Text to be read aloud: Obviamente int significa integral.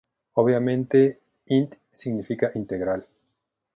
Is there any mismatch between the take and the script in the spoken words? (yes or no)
no